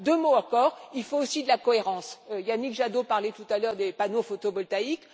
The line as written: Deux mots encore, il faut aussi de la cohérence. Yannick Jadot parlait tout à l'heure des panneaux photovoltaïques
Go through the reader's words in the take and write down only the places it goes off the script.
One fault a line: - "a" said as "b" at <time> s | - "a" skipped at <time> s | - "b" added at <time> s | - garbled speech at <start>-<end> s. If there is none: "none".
none